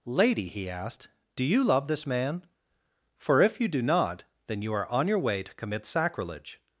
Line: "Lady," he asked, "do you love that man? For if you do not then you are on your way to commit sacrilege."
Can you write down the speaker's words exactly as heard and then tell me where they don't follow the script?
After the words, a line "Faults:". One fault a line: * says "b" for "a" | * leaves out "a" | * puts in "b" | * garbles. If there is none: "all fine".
"Lady," he asked, "do you love this man? For if you do not then you are on your way to commit sacrilege."
Faults:
* says "this" for "that"